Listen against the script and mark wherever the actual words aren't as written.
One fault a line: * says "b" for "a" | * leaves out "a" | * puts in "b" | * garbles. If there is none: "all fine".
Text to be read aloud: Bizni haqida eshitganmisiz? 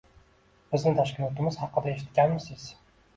* puts in "tashkilotimiz"